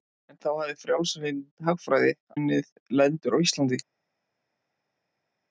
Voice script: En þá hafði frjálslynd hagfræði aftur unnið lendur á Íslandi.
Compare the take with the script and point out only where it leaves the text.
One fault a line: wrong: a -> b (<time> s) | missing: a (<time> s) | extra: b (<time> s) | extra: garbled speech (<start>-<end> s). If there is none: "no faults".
missing: aftur (2.1 s)